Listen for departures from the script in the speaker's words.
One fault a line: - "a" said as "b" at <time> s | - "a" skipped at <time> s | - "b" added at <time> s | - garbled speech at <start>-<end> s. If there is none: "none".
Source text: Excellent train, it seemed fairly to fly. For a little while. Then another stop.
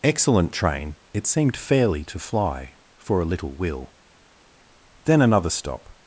- "while" said as "will" at 3.5 s